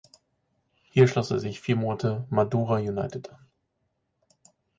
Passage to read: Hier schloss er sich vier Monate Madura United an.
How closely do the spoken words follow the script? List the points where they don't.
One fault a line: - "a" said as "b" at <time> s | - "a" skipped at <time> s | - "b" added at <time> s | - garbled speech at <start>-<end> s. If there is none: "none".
none